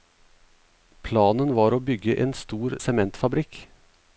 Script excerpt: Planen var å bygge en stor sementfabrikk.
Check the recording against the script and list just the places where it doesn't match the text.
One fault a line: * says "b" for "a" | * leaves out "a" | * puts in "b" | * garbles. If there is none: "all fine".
all fine